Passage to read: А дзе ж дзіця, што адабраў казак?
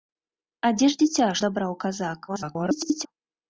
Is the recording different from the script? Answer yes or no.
yes